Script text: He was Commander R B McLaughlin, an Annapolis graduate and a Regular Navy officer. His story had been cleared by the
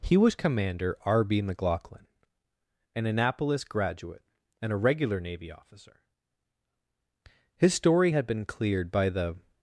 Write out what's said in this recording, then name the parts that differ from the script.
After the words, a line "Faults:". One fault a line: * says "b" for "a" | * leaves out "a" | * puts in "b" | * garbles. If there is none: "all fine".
He was Commander R B McLaughlin, an Annapolis graduate and a Regular Navy officer. His story had been cleared by the
Faults:
all fine